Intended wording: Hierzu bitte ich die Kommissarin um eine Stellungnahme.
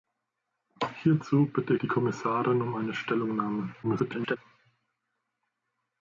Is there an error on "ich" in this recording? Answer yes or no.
yes